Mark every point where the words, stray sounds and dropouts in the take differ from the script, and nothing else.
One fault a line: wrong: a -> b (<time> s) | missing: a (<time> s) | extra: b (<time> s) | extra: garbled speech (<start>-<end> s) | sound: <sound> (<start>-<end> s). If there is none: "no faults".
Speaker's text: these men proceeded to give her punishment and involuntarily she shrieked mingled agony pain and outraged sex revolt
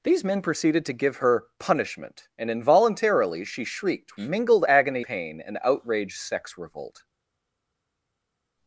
no faults